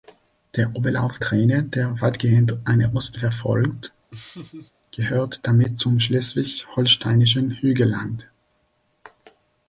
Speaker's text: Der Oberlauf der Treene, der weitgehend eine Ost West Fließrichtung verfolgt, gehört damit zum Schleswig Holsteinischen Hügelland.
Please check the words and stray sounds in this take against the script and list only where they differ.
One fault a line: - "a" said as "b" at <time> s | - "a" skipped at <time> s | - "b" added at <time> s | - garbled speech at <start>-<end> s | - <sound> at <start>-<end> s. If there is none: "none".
- "der" skipped at 1.2 s
- "West Fließrichtung" skipped at 3.2 s
- laugh at 4.1-4.7 s